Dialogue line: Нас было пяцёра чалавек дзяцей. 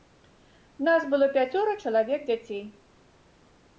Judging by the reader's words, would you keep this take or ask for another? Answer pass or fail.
pass